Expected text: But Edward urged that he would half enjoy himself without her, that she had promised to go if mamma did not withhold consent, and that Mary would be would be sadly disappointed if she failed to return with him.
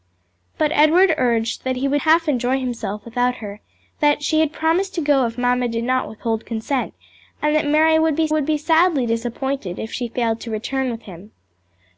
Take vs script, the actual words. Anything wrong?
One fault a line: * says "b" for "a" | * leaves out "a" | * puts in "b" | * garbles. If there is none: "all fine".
all fine